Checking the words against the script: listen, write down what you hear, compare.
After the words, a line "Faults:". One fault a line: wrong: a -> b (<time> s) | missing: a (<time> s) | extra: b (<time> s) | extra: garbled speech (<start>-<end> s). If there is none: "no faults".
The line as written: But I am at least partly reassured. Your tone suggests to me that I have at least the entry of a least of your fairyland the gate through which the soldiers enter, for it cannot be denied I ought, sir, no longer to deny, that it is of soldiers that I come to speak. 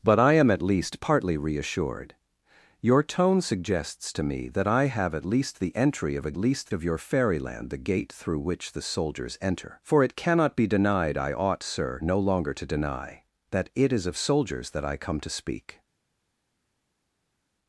But I am at least partly reassured. Your tone suggests to me that I have at least the entry of a least of your fairyland the gate through which the soldiers enter, for it cannot be denied I ought, sir, no longer to deny, that it is of soldiers that I come to speak.
Faults:
no faults